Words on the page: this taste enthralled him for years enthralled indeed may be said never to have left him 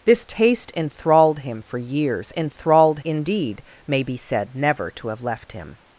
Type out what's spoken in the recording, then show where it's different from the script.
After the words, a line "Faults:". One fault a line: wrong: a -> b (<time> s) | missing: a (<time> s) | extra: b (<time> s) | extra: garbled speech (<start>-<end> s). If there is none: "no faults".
this taste enthralled him for years enthralled indeed may be said never to have left him
Faults:
no faults